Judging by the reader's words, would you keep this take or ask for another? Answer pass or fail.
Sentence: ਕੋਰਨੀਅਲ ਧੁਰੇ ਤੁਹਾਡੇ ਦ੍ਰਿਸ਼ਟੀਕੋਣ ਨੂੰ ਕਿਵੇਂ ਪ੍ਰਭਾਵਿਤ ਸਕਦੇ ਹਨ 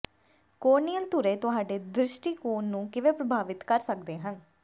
fail